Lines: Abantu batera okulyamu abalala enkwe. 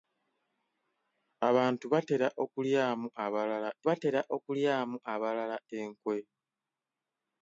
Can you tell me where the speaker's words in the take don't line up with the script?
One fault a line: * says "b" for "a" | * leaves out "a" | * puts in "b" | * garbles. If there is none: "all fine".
* puts in "batera okulyamu abalala"